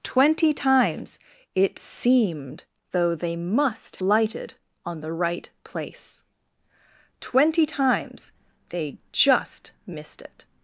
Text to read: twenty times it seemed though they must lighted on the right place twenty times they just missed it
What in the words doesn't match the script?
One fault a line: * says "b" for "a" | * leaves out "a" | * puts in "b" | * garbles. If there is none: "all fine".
all fine